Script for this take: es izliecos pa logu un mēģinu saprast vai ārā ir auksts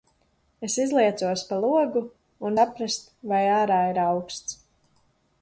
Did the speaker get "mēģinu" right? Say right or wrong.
wrong